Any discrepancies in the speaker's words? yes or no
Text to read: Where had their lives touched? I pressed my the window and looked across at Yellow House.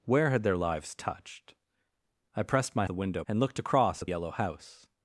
no